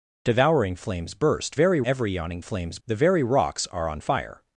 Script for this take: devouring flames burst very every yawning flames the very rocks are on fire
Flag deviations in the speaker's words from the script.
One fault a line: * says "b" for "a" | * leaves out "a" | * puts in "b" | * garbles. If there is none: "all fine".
all fine